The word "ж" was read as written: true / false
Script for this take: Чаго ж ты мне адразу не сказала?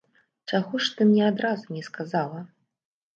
true